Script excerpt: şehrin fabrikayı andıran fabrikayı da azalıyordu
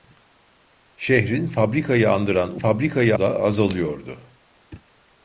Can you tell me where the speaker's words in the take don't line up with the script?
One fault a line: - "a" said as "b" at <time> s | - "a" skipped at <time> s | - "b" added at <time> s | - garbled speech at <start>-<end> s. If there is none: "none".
none